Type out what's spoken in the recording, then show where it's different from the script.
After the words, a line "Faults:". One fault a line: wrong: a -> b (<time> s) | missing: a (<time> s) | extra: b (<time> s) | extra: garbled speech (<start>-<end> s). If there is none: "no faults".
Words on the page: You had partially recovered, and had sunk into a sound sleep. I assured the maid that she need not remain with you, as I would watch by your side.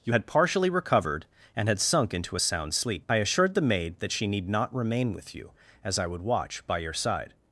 You had partially recovered, and had sunk into a sound sleep. I assured the maid that she need not remain with you, as I would watch by your side.
Faults:
no faults